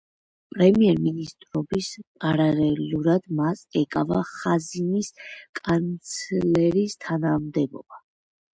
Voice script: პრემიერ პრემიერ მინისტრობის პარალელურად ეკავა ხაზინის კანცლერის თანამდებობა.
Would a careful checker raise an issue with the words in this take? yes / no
yes